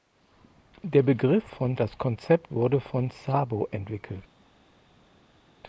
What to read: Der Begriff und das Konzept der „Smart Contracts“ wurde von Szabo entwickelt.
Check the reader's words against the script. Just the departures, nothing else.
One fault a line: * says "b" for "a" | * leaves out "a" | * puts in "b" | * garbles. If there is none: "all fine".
* says "von" for "und"
* leaves out "der Smart Contracts"